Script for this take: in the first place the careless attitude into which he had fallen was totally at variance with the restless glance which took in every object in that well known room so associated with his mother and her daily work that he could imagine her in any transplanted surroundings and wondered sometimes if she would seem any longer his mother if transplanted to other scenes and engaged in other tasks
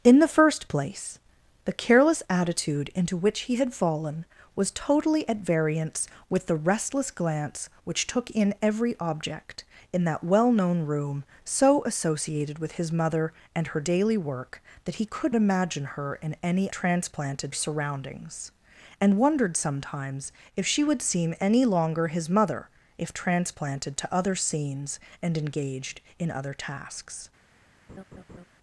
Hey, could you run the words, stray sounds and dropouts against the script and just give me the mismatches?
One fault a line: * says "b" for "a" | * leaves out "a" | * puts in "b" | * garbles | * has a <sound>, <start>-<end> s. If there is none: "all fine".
* has a laugh, 27.9-28.5 s